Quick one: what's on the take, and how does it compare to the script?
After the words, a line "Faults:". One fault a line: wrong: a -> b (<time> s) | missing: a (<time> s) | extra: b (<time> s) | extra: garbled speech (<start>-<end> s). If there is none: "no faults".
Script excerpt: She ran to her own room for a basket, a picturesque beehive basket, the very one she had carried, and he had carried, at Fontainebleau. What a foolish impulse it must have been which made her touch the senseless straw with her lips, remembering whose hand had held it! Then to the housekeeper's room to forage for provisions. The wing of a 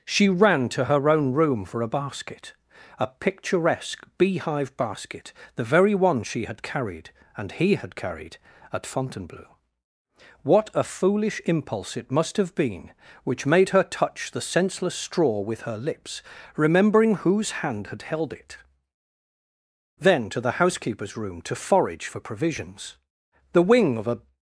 She ran to her own room for a basket, a picturesque beehive basket, the very one she had carried, and he had carried, at Fontainebleau. What a foolish impulse it must have been which made her touch the senseless straw with her lips, remembering whose hand had held it! Then to the housekeeper's room to forage for provisions. The wing of a
Faults:
no faults